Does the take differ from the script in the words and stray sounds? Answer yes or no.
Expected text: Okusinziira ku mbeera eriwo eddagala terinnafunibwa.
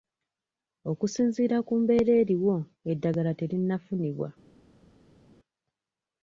no